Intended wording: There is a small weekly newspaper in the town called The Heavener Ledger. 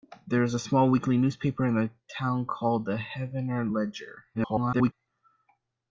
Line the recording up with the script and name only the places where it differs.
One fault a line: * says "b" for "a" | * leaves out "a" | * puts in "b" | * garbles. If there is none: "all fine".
* garbles